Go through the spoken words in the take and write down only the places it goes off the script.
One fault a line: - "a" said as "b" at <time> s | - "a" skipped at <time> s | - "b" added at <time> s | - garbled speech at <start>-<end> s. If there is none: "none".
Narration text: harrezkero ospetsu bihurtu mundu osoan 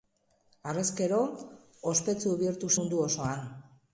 none